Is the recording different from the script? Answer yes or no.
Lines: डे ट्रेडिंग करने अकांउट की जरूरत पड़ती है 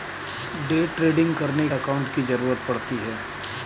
no